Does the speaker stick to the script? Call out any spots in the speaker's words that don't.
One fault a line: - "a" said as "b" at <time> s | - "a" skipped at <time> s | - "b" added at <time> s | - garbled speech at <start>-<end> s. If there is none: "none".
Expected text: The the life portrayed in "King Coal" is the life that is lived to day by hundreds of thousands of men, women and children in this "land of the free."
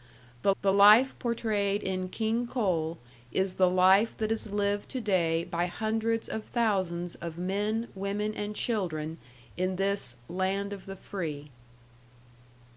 none